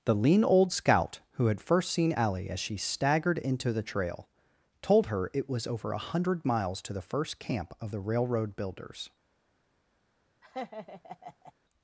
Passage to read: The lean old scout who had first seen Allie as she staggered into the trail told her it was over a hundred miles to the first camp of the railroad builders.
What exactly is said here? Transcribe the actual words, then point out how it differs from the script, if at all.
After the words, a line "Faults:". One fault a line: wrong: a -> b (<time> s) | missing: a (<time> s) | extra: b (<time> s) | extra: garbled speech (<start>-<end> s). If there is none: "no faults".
The lean old scout who had first seen Allie as she staggered into the trail told her it was over a hundred miles to the first camp of the railroad builders.
Faults:
no faults